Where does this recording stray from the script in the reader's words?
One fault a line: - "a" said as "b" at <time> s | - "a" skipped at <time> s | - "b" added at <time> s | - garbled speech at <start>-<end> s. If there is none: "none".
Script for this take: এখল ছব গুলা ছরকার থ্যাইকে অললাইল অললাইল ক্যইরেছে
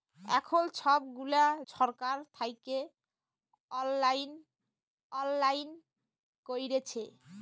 none